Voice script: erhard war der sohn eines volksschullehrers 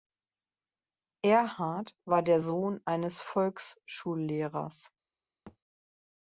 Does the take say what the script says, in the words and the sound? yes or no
no